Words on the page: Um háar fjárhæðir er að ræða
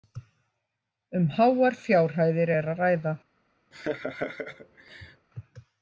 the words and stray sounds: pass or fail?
fail